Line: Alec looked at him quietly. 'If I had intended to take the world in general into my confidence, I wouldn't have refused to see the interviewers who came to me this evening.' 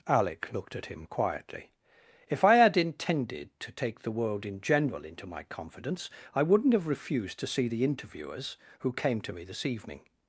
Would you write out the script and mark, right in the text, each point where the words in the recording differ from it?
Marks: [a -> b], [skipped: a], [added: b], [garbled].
Alec looked at him quietly. 'If I had intended to take the world in general into my confidence, I wouldn't have refused to see the interviewers who came to me this evening.'